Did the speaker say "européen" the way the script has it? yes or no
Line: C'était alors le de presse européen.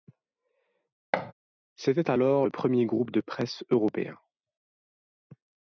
yes